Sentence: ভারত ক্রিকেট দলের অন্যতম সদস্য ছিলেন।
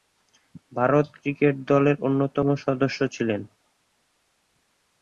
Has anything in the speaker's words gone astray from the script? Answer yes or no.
no